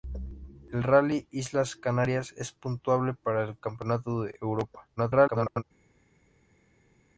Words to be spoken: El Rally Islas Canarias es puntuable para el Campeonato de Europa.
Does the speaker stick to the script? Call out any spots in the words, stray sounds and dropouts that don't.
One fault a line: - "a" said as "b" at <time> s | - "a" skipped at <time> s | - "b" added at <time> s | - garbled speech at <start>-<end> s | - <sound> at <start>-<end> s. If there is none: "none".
- garbled speech at 5.0-5.6 s